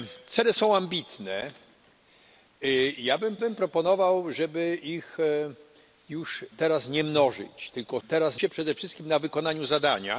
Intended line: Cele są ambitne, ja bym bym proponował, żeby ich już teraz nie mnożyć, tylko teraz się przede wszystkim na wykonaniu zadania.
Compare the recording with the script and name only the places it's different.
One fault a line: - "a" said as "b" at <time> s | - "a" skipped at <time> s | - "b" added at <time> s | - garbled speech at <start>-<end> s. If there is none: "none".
none